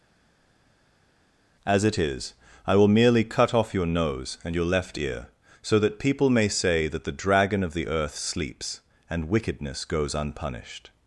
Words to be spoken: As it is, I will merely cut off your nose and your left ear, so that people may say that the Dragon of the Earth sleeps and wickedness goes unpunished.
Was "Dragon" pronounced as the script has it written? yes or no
yes